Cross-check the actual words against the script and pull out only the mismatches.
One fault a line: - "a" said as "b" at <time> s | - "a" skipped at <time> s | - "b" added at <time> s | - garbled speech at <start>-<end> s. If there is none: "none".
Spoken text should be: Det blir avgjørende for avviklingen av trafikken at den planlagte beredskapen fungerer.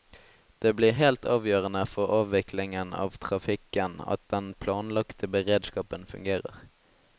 - "helt" added at 1.0 s